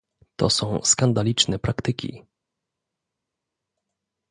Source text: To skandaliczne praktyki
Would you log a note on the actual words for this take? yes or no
yes